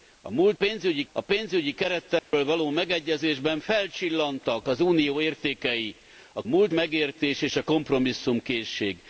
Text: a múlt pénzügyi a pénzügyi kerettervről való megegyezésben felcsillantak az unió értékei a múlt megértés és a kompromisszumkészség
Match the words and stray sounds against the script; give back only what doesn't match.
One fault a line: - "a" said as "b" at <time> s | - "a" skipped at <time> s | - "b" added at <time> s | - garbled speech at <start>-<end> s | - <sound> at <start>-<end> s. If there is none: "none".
- dropout at 2.2-2.3 s